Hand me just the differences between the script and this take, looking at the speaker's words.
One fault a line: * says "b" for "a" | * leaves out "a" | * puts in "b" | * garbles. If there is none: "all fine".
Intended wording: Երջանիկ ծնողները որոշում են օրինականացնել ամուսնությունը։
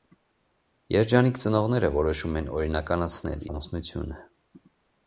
all fine